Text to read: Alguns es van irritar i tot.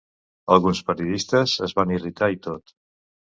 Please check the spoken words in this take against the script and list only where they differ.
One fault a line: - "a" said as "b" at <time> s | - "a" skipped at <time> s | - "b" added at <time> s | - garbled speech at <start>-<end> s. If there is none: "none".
- "periodistes" added at 0.9 s